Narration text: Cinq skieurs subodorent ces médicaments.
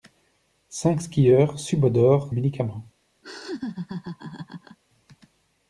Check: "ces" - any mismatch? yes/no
yes